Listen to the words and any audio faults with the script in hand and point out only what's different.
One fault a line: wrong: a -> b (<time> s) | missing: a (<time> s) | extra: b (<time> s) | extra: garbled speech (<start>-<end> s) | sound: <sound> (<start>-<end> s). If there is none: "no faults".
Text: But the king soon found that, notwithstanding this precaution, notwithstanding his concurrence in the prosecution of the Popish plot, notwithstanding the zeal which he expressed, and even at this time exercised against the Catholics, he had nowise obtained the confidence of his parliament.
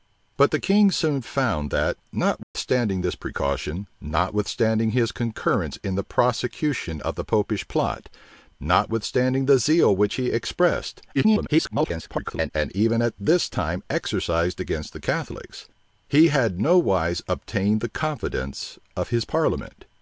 sound: dropout (2.4-2.6 s)
extra: garbled speech (11.1-12.5 s)